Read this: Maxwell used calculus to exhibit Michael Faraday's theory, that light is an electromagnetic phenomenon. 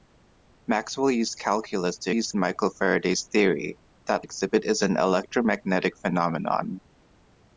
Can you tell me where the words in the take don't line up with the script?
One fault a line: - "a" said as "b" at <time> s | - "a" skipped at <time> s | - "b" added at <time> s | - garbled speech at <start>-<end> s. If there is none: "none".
- "exhibit" said as "used" at 2.1 s
- "light" said as "exhibit" at 4.2 s